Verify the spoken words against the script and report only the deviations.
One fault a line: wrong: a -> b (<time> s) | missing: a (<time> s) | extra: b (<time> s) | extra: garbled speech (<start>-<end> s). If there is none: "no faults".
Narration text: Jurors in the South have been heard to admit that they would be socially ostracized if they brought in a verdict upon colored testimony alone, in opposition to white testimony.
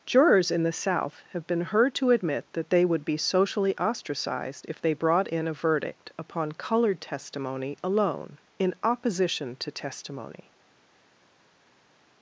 missing: white (9.7 s)